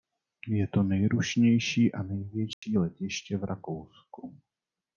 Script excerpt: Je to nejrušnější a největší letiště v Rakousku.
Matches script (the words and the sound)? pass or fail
fail